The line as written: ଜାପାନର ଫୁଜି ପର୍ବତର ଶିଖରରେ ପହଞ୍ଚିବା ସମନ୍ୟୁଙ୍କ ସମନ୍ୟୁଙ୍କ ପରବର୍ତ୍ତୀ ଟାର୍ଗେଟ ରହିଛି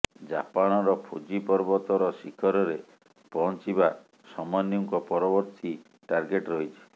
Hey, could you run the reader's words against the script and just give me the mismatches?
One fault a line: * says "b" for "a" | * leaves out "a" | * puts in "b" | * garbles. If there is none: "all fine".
* leaves out "ସମନ୍ୟୁଙ୍କ"